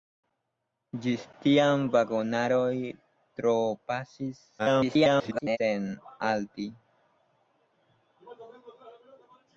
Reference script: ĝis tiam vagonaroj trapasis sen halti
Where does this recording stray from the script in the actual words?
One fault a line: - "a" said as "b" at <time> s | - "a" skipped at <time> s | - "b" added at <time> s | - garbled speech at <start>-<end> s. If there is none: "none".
- garbled speech at 4.6-5.6 s